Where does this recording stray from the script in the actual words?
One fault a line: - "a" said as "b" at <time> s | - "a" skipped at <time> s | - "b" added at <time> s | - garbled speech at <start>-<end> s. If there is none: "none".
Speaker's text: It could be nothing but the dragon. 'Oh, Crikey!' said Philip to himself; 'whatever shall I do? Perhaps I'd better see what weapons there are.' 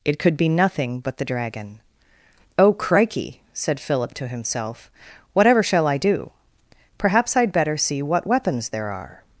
none